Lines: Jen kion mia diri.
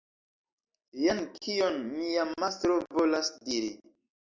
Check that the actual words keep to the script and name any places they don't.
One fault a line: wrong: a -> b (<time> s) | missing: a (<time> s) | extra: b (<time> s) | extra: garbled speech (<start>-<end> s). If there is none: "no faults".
extra: mastro volas (2.4 s)